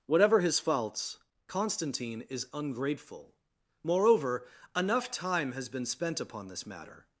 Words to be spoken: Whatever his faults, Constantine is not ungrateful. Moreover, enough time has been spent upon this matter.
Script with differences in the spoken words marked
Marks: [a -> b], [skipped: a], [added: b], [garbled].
Whatever his faults, Constantine is [skipped: not] ungrateful. Moreover, enough time has been spent upon this matter.